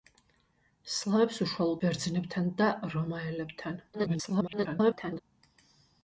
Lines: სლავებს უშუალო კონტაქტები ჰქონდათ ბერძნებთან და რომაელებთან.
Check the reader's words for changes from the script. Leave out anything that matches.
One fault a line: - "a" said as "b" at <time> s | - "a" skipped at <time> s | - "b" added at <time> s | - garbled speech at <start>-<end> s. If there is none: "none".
- "კონტაქტები ჰქონდათ" skipped at 1.8 s
- garbled speech at 3.9-5.2 s